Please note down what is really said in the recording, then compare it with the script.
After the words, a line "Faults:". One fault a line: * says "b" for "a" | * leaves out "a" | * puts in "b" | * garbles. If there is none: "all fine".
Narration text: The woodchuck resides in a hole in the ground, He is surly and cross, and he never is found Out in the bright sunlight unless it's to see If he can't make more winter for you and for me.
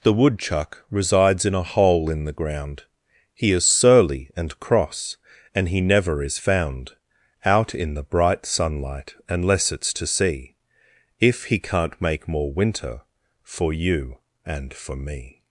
The woodchuck resides in a hole in the ground, He is surly and cross, and he never is found Out in the bright sunlight unless it's to see If he can't make more winter for you and for me.
Faults:
all fine